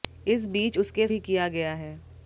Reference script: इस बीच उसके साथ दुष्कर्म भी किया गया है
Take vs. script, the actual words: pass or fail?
fail